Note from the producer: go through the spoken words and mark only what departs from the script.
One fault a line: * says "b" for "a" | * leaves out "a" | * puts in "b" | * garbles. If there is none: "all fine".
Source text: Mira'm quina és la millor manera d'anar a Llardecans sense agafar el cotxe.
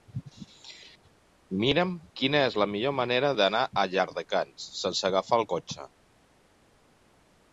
all fine